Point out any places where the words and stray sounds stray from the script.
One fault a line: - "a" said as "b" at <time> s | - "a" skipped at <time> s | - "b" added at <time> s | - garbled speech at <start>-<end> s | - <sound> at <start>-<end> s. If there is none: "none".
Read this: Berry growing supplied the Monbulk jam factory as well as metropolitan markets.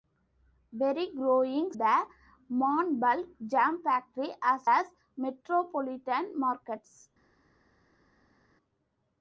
- "supplied" skipped at 1.7 s
- "well" skipped at 4.7 s